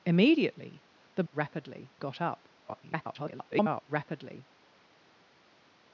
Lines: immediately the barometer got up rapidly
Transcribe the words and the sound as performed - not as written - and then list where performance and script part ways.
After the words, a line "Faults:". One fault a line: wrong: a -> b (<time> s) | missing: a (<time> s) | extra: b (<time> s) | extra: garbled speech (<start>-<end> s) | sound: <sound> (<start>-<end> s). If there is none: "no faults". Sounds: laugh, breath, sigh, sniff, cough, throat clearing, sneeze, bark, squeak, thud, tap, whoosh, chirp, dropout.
immediately the rapidly got up [garbled] rapidly
Faults:
wrong: barometer -> rapidly (1.3 s)
extra: garbled speech (2.6-3.8 s)